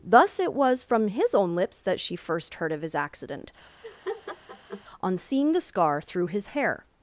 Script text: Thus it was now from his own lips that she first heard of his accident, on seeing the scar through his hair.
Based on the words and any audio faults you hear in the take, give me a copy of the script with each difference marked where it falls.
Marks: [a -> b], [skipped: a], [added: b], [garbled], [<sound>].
Thus it was [skipped: now] from his own lips that she first heard of his accident, [laugh] on seeing the scar through his hair.